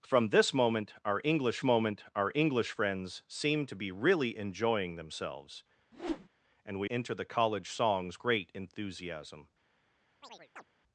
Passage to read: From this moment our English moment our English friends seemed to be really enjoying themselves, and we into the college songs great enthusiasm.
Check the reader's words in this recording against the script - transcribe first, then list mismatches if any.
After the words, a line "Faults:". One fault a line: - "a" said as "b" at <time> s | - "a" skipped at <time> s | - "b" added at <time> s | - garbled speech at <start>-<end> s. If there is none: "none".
From this moment our English moment our English friends seemed to be really enjoying themselves, and we into the college songs great enthusiasm.
Faults:
none